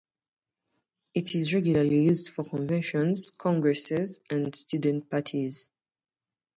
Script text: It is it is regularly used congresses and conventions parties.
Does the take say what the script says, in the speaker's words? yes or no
no